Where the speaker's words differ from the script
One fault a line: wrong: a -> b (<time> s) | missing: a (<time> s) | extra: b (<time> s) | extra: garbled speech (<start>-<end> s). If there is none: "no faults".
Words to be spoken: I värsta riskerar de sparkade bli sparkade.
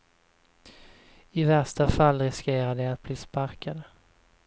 extra: fall (1.9 s)
wrong: sparkade -> att (2.9 s)